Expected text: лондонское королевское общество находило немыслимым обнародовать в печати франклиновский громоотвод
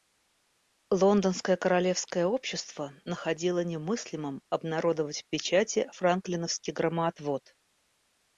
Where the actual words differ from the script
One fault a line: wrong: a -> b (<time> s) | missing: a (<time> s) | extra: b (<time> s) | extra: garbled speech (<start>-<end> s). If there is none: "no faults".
no faults